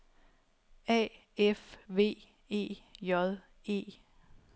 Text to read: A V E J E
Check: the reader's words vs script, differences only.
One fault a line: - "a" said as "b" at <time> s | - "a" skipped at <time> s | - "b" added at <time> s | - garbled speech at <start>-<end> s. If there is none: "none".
- "F" added at 1.4 s